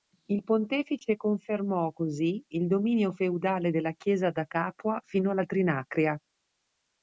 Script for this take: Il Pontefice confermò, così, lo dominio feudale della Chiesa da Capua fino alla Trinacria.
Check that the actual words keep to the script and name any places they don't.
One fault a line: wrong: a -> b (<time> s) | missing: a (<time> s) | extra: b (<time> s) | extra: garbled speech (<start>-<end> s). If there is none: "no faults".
wrong: lo -> il (2.5 s)